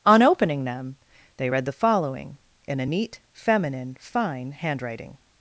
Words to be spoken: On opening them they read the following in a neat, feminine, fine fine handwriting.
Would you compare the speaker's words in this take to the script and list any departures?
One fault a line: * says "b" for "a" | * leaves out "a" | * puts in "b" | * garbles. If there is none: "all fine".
* leaves out "fine"